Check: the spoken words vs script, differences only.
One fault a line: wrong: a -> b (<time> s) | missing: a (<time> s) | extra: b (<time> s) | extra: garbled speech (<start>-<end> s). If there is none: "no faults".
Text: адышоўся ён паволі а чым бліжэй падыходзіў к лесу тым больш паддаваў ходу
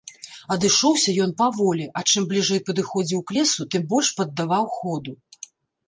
no faults